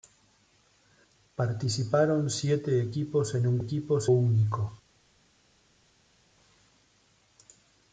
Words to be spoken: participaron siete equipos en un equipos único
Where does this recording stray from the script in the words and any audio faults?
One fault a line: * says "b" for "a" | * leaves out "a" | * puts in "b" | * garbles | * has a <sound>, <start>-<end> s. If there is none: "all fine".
all fine